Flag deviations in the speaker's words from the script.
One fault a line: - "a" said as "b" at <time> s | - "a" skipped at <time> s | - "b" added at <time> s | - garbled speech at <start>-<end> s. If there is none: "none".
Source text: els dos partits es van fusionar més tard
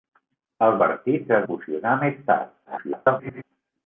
- "dos" skipped at 0.8 s
- "van" skipped at 1.5 s
- garbled speech at 2.6-3.4 s